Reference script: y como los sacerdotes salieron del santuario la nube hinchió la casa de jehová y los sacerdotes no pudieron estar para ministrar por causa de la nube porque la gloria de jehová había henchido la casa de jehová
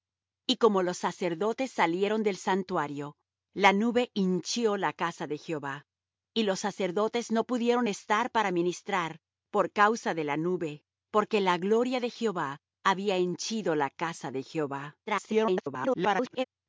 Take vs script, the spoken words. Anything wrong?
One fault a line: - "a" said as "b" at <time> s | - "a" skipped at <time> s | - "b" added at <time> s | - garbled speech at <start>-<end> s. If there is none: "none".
- garbled speech at 15.1-16.4 s